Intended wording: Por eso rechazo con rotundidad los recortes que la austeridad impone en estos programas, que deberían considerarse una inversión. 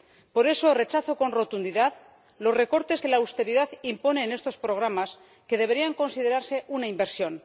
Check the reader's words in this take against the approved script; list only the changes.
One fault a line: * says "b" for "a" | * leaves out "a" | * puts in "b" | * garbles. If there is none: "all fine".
all fine